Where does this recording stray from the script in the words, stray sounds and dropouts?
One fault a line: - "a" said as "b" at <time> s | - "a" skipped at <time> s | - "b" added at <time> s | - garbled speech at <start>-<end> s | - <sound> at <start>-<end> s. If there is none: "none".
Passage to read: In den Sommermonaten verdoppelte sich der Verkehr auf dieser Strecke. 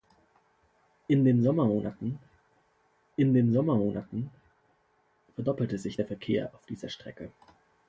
- "in den Sommermonaten" added at 3.2 s